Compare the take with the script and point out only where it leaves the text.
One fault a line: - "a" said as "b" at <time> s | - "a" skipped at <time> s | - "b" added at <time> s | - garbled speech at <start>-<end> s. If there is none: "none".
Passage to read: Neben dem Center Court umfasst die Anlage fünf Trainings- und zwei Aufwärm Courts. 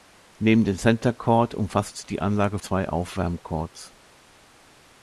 - "fünf Trainings und" skipped at 2.6 s